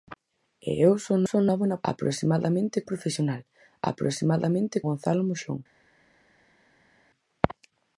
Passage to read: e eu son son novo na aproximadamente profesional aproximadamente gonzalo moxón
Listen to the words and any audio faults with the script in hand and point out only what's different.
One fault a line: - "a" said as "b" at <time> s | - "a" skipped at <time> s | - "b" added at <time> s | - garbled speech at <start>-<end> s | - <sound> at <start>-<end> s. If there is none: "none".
none